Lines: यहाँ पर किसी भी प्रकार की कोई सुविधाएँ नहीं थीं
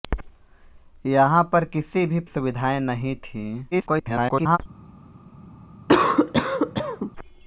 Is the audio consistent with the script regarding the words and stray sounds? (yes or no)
no